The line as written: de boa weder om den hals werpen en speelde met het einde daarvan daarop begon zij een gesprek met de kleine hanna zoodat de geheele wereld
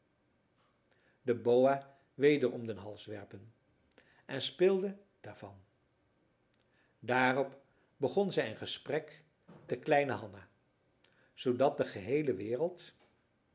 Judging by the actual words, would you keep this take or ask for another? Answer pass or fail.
fail